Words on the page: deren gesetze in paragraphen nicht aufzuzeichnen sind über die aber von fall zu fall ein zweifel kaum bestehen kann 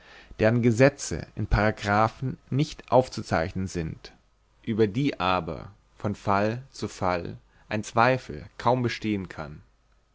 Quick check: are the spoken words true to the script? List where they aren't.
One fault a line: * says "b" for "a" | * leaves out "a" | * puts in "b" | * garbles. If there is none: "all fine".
all fine